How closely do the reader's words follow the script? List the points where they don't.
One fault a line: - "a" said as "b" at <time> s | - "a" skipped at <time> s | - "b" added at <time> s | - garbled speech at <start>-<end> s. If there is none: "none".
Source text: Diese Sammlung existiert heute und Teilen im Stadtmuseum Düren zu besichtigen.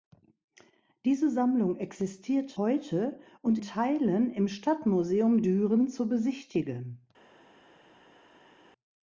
none